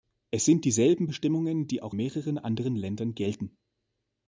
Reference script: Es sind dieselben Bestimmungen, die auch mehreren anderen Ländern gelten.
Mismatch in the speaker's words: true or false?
false